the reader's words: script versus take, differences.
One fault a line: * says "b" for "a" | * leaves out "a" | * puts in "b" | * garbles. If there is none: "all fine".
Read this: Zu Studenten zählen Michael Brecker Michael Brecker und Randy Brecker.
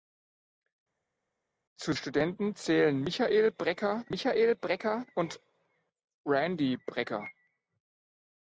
all fine